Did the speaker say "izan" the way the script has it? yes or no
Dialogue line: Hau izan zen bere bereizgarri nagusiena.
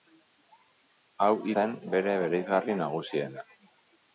no